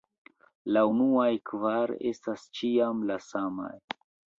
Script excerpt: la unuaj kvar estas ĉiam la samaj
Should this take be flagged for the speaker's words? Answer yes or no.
no